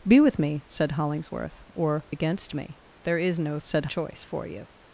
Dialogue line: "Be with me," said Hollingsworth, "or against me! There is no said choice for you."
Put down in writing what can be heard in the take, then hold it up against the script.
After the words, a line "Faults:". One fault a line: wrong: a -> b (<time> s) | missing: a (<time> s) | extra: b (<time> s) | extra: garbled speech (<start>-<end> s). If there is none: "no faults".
"Be with me," said Hollingsworth, "or against me! There is no said choice for you."
Faults:
no faults